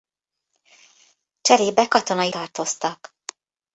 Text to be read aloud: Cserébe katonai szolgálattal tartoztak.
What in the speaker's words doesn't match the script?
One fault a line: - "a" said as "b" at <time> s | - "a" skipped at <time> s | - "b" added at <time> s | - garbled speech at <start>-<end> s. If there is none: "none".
- "szolgálattal" skipped at 2.3 s